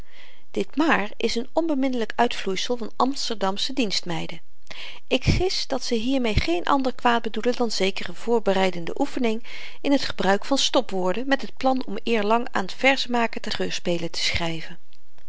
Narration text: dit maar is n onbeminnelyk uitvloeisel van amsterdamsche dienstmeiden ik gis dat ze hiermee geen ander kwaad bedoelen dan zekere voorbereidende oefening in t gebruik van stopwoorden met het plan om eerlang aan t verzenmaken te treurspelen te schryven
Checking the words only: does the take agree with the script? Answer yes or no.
yes